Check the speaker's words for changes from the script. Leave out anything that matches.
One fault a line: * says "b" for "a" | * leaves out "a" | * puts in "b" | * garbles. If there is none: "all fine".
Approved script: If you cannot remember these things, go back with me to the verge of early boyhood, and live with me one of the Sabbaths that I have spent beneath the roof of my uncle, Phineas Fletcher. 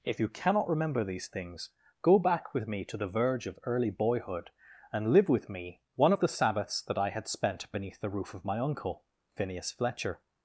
* says "had" for "have"